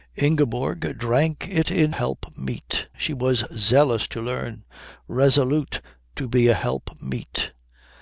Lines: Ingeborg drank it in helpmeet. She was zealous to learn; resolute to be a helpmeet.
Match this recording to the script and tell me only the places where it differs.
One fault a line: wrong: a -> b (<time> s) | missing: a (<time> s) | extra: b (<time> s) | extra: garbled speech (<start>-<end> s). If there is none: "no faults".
no faults